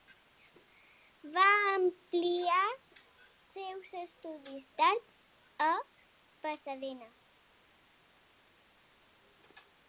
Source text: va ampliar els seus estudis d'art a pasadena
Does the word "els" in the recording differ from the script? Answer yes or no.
yes